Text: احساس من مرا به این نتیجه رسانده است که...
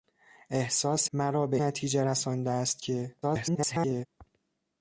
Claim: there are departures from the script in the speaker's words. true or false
true